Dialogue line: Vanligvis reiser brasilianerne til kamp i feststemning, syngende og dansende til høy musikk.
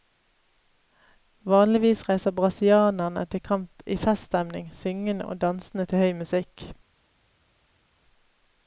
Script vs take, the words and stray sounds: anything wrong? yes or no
no